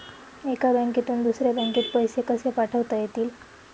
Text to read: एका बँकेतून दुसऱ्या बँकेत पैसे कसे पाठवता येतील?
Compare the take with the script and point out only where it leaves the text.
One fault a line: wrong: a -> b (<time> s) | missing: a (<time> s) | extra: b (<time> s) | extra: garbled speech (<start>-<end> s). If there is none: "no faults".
no faults